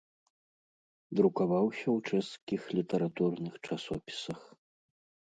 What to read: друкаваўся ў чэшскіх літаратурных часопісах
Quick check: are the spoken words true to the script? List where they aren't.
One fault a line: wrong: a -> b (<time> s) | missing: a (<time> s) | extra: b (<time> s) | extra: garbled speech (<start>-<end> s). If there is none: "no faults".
no faults